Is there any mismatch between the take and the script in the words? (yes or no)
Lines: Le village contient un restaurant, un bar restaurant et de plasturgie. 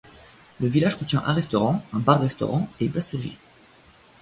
no